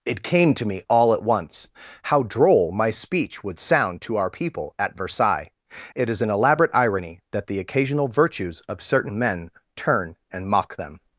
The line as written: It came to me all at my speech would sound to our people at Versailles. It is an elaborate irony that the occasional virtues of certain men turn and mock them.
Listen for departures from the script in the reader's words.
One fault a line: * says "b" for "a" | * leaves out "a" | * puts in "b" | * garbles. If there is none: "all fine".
* puts in "once how droll"